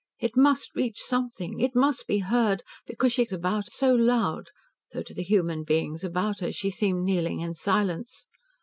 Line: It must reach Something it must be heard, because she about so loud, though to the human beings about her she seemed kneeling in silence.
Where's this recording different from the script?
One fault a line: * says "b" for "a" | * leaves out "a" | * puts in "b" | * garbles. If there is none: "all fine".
all fine